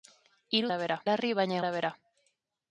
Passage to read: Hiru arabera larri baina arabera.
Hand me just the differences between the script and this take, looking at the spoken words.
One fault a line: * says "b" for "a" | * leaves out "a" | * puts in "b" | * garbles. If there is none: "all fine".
all fine